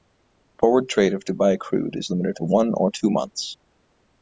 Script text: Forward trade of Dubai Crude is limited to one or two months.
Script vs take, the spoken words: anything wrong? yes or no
no